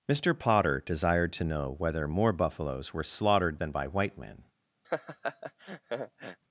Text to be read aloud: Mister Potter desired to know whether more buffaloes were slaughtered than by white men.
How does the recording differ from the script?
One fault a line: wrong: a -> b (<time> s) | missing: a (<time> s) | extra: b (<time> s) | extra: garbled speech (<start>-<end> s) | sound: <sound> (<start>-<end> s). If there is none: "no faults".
sound: laugh (4.8-6.4 s)